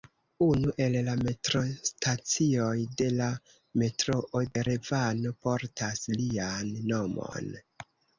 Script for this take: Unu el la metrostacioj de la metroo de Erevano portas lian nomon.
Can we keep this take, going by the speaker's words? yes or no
no